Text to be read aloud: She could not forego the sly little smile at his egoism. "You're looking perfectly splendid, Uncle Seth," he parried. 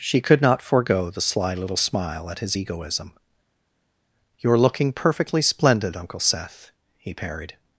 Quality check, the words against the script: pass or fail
pass